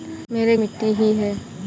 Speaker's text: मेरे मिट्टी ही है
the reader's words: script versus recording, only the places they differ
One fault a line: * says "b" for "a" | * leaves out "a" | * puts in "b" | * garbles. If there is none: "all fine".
all fine